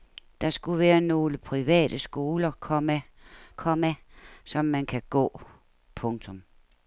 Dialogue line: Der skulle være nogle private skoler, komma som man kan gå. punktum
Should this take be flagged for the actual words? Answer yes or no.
yes